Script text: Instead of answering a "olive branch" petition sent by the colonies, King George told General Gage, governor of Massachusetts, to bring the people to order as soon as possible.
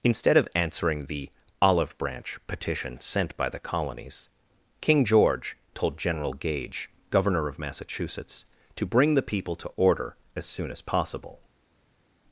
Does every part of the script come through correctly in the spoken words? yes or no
no